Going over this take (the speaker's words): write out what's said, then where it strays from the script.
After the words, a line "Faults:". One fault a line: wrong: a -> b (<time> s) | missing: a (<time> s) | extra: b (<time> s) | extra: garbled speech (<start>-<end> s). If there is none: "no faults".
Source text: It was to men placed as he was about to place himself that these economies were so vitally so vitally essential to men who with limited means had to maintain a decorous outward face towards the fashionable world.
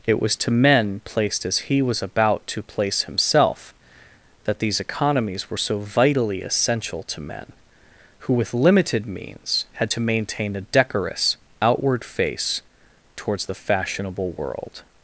It was to men placed as he was about to place himself that these economies were so vitally essential to men who with limited means had to maintain a decorous outward face towards the fashionable world.
Faults:
missing: so vitally (6.4 s)